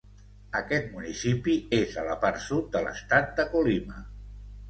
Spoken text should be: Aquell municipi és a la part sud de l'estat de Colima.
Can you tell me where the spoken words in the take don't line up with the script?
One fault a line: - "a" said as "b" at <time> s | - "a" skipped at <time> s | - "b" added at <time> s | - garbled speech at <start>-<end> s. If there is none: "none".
- "Aquell" said as "Aquest" at 0.6 s